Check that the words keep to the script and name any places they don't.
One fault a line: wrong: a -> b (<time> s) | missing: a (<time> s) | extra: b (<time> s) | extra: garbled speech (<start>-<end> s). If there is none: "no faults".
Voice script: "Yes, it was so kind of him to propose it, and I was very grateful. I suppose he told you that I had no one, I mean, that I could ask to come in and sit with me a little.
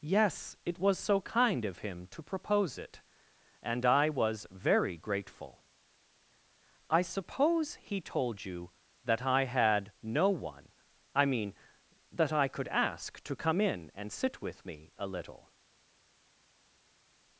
no faults